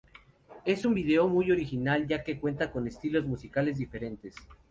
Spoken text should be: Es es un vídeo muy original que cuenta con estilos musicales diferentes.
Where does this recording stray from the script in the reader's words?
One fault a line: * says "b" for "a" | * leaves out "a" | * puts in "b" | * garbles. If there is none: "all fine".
* leaves out "es"
* puts in "ya"